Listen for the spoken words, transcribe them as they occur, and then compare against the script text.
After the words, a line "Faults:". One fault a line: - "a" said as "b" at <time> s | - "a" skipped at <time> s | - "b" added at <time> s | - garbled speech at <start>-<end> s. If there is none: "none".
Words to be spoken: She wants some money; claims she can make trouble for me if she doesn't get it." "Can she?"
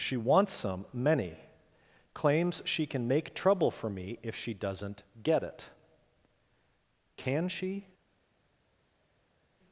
She wants some many; claims she can make trouble for me if she doesn't get it." "Can she?"
Faults:
- "money" said as "many" at 0.9 s